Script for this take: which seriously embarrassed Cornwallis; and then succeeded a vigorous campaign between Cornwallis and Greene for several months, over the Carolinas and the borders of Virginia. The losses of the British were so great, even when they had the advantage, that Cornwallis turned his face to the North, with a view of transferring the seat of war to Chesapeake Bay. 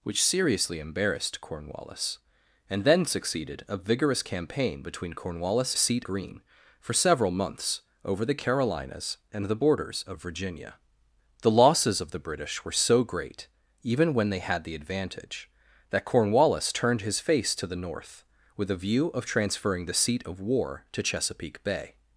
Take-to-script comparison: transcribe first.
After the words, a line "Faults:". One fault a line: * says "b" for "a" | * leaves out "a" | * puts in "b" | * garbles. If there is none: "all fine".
which seriously embarrassed Cornwallis; and then succeeded a vigorous campaign between Cornwallis seat Greene for several months, over the Carolinas and the borders of Virginia. The losses of the British were so great, even when they had the advantage, that Cornwallis turned his face to the North, with a view of transferring the seat of war to Chesapeake Bay.
Faults:
* says "seat" for "and"